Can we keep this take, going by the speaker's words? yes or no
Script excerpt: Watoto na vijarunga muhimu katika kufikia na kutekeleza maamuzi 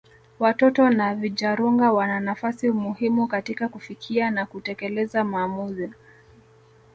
no